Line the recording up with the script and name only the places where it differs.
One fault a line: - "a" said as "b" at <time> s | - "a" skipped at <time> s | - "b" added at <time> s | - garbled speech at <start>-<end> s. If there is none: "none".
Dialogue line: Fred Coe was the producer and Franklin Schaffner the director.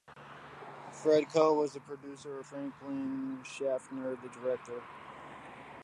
none